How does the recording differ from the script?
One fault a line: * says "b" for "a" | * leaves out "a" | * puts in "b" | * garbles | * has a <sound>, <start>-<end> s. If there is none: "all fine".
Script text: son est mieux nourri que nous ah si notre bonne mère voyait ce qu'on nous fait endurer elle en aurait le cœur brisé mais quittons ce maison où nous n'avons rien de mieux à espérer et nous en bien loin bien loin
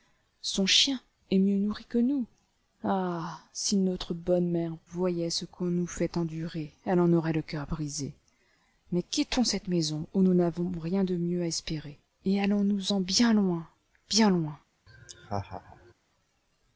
* puts in "chien"
* says "cette" for "ce"
* puts in "allons"
* has a laugh, 14.9-15.9 s